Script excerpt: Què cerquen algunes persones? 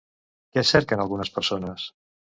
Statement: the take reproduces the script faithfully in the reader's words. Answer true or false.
true